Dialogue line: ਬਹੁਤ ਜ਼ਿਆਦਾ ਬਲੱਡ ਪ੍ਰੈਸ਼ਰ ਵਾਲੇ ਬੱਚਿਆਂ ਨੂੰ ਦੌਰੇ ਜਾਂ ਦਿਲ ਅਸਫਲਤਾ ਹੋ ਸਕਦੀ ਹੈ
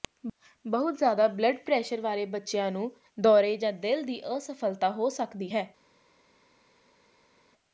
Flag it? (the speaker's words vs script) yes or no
yes